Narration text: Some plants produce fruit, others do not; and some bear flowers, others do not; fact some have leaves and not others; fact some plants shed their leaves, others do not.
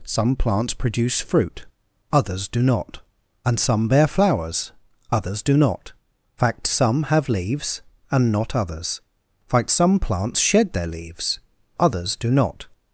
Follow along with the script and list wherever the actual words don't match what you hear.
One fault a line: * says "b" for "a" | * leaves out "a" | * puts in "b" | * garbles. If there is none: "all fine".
all fine